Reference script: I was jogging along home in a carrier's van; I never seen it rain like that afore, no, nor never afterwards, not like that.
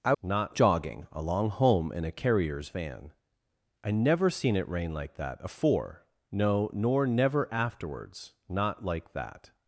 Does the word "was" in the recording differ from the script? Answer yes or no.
yes